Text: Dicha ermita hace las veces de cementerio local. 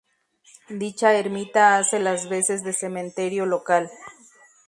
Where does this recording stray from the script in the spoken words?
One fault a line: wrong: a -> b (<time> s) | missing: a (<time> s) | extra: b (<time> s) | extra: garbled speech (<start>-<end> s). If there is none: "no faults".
no faults